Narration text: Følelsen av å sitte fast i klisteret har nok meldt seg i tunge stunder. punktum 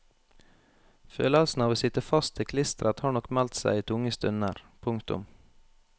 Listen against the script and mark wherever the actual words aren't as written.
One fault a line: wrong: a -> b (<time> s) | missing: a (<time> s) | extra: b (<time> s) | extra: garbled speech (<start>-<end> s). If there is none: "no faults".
no faults